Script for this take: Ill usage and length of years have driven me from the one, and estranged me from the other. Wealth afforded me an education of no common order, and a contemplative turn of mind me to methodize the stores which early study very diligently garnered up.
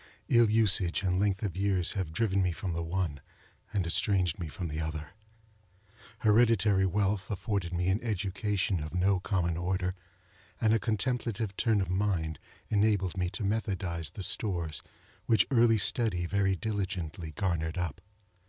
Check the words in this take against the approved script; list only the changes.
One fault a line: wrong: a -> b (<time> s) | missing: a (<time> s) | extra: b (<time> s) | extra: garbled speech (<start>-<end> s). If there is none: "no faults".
extra: Hereditary (6.2 s)
extra: enabled (12.7 s)